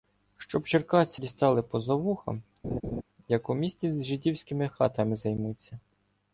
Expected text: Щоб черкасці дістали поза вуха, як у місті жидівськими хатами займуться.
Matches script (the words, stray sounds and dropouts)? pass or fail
fail